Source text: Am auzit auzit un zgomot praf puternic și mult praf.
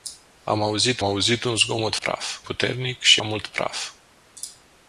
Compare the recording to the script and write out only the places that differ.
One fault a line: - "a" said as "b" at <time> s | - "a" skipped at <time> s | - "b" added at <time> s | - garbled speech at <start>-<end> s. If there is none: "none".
none